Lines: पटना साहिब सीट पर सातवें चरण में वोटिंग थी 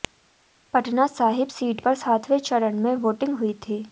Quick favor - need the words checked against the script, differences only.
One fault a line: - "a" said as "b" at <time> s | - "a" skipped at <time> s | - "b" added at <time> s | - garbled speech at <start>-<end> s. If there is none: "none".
- "हुई" added at 3.4 s